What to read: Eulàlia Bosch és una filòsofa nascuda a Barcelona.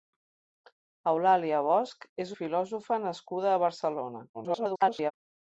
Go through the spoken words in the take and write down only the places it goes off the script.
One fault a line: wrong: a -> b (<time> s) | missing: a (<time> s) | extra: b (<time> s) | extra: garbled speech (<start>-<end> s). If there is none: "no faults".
missing: una (2.3 s)
extra: garbled speech (4.3-5.1 s)